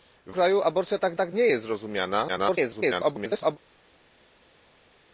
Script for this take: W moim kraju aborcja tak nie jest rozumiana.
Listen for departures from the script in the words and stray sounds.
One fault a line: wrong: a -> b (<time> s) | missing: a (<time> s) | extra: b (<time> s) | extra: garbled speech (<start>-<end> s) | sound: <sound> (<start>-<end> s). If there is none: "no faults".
missing: moim (0.3 s)
extra: tak (1.1 s)
extra: garbled speech (2.3-3.6 s)